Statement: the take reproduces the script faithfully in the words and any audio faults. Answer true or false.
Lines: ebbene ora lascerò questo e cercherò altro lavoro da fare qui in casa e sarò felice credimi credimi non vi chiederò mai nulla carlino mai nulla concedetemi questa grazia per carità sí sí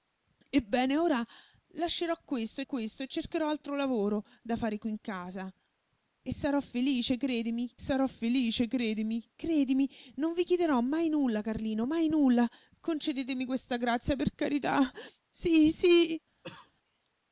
false